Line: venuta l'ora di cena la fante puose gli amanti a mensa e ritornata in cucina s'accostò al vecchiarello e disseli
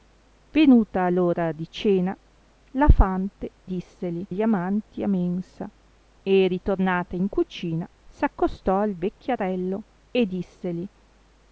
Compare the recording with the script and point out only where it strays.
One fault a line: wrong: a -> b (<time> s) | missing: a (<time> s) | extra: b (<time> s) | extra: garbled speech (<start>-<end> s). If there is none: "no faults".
wrong: puose -> disseli (3.6 s)